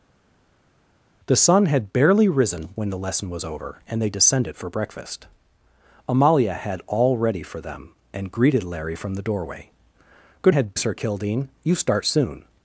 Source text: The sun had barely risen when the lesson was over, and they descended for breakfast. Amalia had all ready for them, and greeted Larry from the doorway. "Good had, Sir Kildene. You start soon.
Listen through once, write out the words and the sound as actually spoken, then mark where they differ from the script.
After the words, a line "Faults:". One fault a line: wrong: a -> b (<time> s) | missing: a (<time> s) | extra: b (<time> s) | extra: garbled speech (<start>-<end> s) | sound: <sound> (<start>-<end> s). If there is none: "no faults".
The sun had barely risen when the lesson was over, and they descended for breakfast. Amalia had all ready for them, and greeted Larry from the doorway. "Good had, Sir Kildene. You start soon.
Faults:
no faults